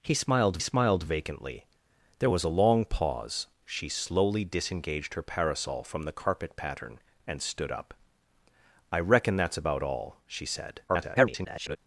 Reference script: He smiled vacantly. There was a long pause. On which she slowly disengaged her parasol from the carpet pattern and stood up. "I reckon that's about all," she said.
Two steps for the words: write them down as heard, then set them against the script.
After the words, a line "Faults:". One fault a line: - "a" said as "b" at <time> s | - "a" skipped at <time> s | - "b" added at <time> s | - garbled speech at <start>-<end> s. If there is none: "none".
He smiled smiled vacantly. There was a long pause. She slowly disengaged her parasol from the carpet pattern and stood up. "I reckon that's about all," she said. [garbled]
Faults:
- "smiled" added at 0.6 s
- "On which" skipped at 3.5 s
- garbled speech at 10.9-11.8 s